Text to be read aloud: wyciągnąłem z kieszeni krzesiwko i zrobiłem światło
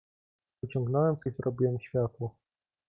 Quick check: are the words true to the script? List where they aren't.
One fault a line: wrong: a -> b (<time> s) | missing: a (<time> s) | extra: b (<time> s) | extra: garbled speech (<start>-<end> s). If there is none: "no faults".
missing: kieszeni krzesiwko (1.2 s)